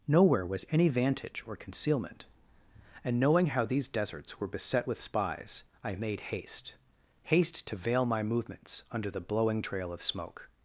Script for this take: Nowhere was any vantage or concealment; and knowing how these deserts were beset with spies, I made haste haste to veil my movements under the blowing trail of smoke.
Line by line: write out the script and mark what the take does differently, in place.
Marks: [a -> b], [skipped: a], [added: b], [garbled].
Nowhere was any vantage or concealment; and knowing how these deserts were beset with spies, I made haste haste to veil my movements under the blowing trail of smoke.